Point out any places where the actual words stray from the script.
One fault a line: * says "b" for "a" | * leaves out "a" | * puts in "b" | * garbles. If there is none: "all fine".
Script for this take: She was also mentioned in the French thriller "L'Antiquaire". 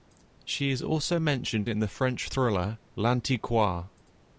* says "is" for "was"